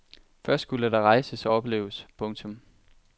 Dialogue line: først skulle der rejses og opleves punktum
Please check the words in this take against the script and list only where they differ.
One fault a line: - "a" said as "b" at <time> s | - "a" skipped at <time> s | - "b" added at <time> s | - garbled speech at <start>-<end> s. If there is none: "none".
none